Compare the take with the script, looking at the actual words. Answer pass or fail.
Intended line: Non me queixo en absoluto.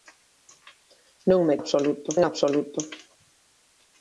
fail